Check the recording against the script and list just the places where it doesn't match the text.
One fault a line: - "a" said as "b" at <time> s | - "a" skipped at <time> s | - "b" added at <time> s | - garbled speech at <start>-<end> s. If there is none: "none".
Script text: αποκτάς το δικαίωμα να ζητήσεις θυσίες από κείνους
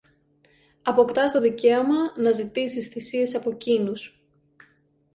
none